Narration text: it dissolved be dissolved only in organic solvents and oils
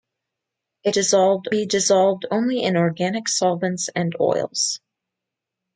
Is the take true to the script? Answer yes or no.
yes